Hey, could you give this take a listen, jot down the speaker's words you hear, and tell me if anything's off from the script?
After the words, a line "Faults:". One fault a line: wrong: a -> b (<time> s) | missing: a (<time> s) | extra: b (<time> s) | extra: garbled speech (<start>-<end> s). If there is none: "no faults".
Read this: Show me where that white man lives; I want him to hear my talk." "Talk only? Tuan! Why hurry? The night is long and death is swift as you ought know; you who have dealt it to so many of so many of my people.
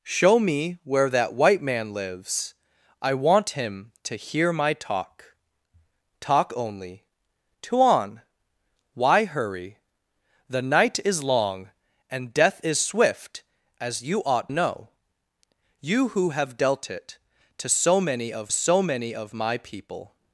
Show me where that white man lives; I want him to hear my talk." "Talk only? Tuan! Why hurry? The night is long and death is swift as you ought know; you who have dealt it to so many of so many of my people.
Faults:
no faults